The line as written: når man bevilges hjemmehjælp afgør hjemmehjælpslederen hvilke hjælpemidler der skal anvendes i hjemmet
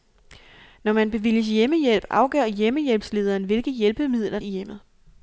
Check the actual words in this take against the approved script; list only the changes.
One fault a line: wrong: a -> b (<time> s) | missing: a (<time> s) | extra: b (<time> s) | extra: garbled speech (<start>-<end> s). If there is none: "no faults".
missing: der skal anvendes (4.4 s)